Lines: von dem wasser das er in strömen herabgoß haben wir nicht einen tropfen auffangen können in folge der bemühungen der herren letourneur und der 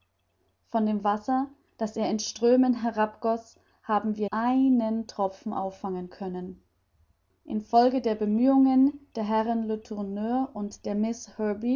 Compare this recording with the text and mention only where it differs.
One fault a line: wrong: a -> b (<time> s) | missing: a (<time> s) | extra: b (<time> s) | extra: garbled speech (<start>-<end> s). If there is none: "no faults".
missing: nicht (4.3 s)